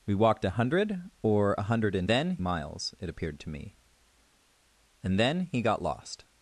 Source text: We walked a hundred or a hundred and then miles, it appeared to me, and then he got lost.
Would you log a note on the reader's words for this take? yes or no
no